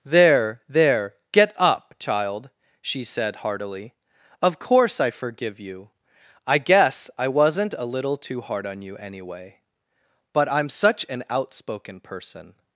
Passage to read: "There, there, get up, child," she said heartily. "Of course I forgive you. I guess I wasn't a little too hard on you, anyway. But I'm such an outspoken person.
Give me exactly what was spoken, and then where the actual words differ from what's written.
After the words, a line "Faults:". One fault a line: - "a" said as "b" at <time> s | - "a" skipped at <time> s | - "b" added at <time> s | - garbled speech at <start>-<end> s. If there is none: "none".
"There, there, get up, child," she said heartily. "Of course I forgive you. I guess I wasn't a little too hard on you, anyway. But I'm such an outspoken person.
Faults:
none